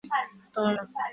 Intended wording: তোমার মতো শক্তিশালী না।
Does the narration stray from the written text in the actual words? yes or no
yes